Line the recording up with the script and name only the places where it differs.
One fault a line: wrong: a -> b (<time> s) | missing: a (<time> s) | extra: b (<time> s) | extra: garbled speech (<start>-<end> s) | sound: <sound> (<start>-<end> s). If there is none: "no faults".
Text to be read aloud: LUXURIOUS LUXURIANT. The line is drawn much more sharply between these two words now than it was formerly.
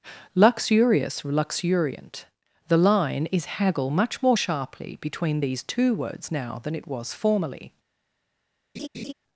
wrong: drawn -> haggle (3.6 s)
sound: laugh (8.7-9.1 s)